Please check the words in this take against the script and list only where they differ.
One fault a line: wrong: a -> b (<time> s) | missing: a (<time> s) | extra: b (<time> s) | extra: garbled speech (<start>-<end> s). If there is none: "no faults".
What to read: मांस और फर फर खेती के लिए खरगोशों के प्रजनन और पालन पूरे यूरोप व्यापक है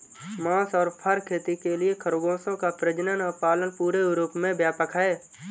missing: फर (1.2 s)
wrong: के -> का (2.6 s)
extra: में (4.4 s)